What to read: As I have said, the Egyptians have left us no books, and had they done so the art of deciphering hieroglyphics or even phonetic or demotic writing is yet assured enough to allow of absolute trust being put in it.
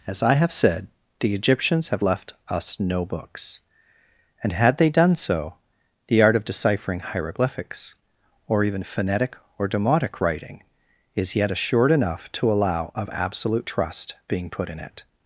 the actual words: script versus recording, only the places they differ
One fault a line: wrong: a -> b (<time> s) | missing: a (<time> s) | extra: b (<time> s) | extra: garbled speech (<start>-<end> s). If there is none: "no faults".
no faults